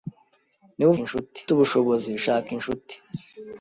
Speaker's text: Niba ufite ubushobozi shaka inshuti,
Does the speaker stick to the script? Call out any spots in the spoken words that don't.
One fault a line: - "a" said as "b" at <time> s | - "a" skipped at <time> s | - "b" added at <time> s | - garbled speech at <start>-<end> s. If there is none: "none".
- "ufite" said as "inshuti" at 1.0 s